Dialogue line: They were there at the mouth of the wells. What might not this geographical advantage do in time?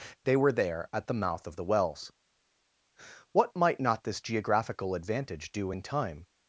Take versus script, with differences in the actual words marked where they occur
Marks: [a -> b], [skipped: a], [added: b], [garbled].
They were there at the mouth of the wells. What might not this geographical advantage do in time?